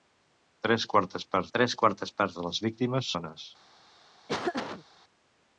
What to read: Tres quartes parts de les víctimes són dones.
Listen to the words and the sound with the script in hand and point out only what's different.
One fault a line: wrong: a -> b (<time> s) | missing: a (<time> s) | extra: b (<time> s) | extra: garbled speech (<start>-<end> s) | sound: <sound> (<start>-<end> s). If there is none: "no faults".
extra: tres quartes parts (1.6 s)
missing: són (3.1 s)
sound: laugh (4.3-4.8 s)